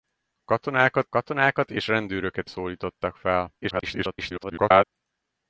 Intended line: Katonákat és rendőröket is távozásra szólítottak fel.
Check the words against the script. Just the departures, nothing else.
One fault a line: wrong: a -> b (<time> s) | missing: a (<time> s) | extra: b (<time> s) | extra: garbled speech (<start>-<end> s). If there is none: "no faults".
extra: katonákat (1.1 s)
missing: is távozásra (2.5 s)
extra: garbled speech (3.6-4.8 s)